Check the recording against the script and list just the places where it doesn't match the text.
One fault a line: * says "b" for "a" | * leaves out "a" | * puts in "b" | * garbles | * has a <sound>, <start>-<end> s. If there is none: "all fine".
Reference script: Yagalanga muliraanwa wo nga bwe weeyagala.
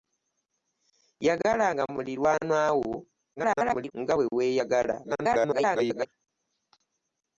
* garbles
* garbles